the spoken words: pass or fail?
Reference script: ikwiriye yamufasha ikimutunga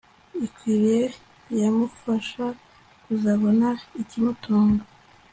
fail